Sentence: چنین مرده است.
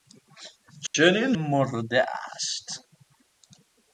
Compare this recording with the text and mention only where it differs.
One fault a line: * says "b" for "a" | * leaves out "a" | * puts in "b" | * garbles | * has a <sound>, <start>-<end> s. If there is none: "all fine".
* has a dropout, 0.9-0.9 s